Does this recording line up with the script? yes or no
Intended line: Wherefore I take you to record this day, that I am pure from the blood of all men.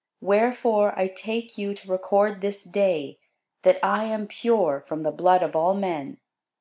yes